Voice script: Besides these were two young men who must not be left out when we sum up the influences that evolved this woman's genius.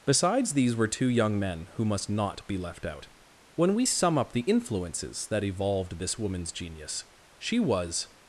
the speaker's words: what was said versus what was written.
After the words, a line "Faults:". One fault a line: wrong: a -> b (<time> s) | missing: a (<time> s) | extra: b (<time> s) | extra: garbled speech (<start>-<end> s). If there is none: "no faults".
Besides these were two young men who must not be left out when we sum up the influences that evolved this woman's genius. She was
Faults:
extra: She was (7.4 s)